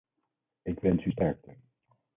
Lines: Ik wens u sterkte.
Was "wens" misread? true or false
false